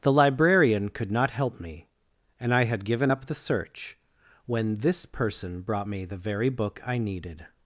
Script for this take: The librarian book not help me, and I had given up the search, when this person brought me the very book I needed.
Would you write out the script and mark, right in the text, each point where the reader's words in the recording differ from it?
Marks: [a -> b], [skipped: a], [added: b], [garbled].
The librarian [book -> could] not help me, and I had given up the search, when this person brought me the very book I needed.